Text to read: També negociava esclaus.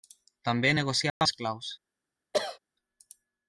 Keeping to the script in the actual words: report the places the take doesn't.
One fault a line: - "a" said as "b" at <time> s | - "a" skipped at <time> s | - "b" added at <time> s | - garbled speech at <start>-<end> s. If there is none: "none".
none